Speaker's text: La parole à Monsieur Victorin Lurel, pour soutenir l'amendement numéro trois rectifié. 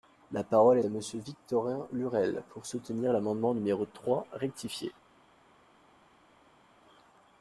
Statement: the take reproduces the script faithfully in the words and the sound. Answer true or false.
true